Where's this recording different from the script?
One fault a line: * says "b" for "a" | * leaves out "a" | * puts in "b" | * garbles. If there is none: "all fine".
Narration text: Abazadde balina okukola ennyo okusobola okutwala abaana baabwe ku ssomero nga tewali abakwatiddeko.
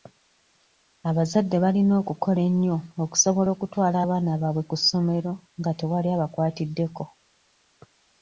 all fine